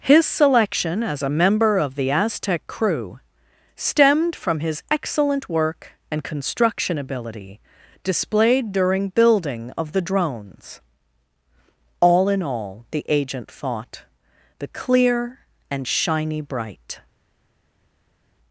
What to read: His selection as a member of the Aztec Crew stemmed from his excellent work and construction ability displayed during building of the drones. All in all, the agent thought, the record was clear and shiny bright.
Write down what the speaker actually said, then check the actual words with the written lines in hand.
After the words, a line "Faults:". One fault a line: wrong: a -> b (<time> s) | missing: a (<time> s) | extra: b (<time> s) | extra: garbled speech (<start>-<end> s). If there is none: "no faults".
His selection as a member of the Aztec Crew stemmed from his excellent work and construction ability displayed during building of the drones. All in all, the agent thought, the clear and shiny bright.
Faults:
missing: record was (14.7 s)